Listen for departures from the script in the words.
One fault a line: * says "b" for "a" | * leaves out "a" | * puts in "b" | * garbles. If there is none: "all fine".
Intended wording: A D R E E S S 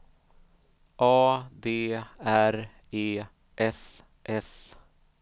* leaves out "E"